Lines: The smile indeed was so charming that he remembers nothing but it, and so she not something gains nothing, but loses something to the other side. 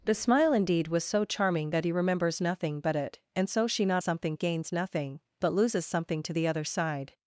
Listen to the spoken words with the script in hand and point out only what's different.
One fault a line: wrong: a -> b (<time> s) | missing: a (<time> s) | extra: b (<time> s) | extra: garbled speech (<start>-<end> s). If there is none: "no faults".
no faults